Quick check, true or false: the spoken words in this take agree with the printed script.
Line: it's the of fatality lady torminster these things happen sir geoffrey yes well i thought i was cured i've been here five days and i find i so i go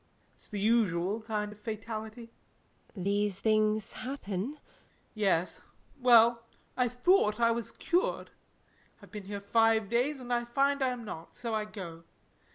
false